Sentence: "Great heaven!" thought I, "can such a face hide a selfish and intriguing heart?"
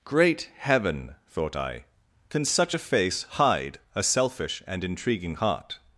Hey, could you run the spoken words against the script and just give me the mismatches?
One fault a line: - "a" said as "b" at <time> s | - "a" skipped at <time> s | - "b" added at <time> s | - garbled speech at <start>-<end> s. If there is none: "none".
none